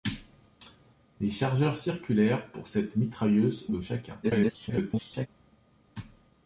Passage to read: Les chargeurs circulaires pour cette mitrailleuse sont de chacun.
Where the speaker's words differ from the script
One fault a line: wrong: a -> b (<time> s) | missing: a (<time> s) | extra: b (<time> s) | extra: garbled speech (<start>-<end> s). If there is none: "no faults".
missing: sont (3.7 s)
extra: garbled speech (4.2-5.3 s)